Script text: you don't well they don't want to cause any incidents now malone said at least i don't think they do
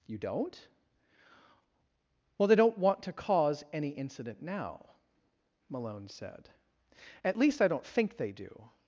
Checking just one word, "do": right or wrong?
right